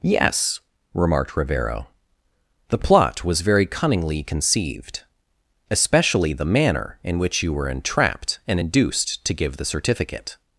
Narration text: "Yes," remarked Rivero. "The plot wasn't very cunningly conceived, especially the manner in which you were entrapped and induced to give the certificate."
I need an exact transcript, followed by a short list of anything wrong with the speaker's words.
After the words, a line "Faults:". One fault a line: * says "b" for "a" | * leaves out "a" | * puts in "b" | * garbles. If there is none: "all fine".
"Yes," remarked Rivero. "The plot was very cunningly conceived, especially the manner in which you were entrapped and induced to give the certificate."
Faults:
* says "was" for "wasn't"